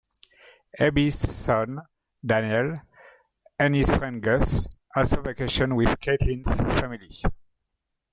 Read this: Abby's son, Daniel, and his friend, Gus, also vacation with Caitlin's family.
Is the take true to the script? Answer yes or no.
yes